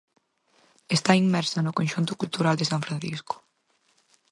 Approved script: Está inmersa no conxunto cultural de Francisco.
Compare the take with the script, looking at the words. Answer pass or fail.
fail